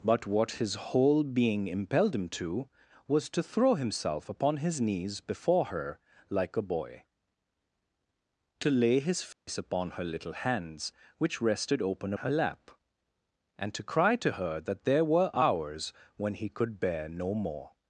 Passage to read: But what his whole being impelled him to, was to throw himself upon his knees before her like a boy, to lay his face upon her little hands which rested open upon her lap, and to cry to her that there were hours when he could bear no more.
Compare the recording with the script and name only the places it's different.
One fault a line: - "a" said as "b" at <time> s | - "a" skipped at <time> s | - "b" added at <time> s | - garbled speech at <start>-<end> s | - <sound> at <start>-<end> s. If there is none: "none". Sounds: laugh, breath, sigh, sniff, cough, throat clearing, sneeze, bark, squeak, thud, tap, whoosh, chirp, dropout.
- dropout at 9.3-9.5 s
- "upon" skipped at 12.1 s